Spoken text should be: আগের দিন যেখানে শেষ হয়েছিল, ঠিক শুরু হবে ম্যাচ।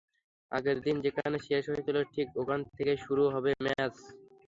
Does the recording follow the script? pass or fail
fail